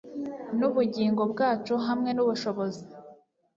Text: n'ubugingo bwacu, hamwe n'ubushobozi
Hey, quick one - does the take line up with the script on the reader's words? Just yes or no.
yes